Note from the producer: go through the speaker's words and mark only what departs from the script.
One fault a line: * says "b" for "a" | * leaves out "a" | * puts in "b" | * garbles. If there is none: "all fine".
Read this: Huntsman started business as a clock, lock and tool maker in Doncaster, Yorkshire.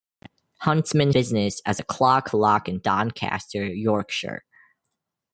* leaves out "started"
* leaves out "tool maker in"